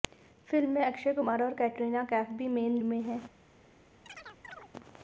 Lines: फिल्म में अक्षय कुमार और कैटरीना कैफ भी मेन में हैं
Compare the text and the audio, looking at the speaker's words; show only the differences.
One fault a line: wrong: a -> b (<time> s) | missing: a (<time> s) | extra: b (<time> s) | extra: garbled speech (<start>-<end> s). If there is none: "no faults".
no faults